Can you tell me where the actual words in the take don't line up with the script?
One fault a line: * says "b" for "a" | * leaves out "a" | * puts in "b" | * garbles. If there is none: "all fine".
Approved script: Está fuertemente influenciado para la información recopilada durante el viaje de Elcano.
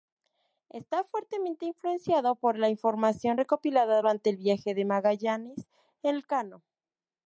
* says "por" for "para"
* puts in "Magallanes"